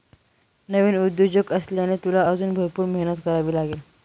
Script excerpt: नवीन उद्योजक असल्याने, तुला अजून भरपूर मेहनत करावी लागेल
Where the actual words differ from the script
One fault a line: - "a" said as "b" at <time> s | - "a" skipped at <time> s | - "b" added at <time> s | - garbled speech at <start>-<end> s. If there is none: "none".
none